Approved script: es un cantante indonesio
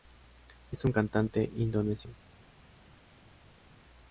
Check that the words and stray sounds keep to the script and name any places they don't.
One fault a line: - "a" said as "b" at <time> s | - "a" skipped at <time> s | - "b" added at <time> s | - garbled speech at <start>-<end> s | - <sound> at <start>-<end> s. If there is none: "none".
none